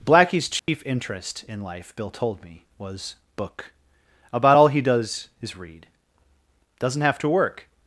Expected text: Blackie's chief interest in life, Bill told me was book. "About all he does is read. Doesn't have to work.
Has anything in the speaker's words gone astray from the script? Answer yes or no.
no